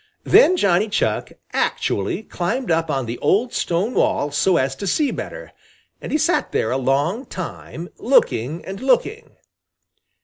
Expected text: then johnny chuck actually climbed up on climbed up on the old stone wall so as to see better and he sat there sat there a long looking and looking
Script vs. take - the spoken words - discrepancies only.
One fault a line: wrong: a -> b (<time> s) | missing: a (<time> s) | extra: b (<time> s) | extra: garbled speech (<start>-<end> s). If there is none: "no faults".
missing: climbed up on (3.1 s)
missing: sat there (6.7 s)
extra: time (7.2 s)